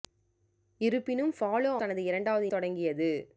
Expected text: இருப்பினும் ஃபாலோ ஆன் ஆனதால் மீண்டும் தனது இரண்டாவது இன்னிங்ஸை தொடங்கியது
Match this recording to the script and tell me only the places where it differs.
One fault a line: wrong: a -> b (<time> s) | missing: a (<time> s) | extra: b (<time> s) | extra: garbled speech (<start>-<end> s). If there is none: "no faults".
missing: ஆன் ஆனதால் மீண்டும் (1.7 s)
missing: இன்னிங்ஸை (2.5 s)